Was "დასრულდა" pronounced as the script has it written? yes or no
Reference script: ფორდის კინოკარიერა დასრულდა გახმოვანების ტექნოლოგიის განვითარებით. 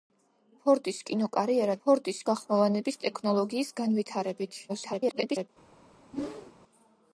no